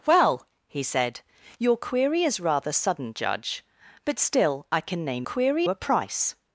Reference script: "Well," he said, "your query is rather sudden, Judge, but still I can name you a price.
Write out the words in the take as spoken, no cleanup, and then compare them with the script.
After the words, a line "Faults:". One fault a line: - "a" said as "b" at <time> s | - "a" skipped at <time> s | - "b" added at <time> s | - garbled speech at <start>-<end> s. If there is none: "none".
"Well," he said, "your query is rather sudden, Judge, but still I can name query a price.
Faults:
- "you" said as "query" at 5.2 s